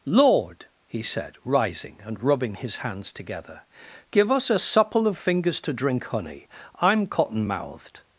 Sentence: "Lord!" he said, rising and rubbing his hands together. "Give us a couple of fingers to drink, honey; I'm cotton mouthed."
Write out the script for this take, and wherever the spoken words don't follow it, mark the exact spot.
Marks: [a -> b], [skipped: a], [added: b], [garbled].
"Lord!" he said, rising and rubbing his hands together. "Give us a [couple -> supple] of fingers to drink, honey; I'm cotton mouthed."